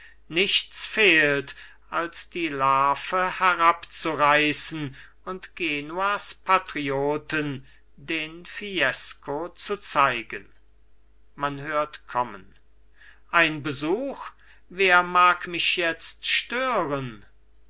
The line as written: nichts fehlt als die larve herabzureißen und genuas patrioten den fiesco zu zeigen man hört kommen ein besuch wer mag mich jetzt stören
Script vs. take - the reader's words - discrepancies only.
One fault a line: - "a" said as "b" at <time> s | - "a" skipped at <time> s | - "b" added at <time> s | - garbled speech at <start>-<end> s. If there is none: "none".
none